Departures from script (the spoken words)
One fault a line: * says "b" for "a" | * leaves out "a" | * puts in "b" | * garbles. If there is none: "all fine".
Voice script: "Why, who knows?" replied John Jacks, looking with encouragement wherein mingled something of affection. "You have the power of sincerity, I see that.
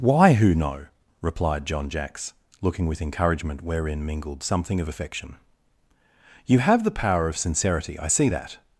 * says "know" for "knows"